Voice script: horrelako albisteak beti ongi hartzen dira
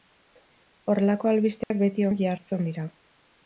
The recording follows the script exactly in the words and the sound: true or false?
false